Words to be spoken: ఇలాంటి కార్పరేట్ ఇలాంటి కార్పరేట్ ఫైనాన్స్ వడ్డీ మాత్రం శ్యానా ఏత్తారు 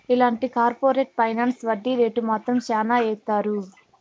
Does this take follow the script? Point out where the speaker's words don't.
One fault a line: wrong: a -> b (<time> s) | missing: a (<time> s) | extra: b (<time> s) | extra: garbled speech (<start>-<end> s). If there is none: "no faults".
missing: ఇలాంటి కార్పరేట్ (1.1 s)
extra: రేటు (2.0 s)